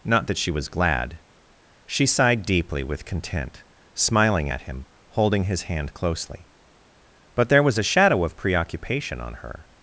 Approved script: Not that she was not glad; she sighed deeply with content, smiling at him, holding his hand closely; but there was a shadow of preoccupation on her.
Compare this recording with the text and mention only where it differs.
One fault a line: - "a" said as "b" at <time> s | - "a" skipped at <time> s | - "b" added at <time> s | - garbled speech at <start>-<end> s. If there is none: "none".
- "not" skipped at 0.7 s